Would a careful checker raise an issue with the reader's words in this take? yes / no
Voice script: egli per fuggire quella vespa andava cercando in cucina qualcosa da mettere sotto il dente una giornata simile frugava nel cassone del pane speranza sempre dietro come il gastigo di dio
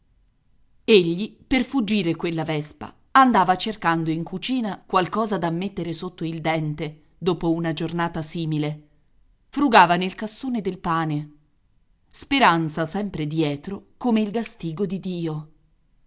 yes